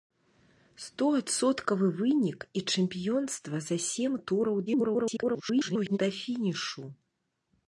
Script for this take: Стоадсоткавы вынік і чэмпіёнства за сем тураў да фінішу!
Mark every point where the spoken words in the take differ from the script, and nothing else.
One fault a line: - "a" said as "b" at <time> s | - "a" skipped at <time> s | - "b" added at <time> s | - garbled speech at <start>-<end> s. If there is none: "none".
- garbled speech at 4.7-6.0 s